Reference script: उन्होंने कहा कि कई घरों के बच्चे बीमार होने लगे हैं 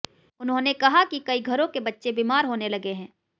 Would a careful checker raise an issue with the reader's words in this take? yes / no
no